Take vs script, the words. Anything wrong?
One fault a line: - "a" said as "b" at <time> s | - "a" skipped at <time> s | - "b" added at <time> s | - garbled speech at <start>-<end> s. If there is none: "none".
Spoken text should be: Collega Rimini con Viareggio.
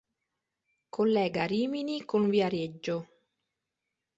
none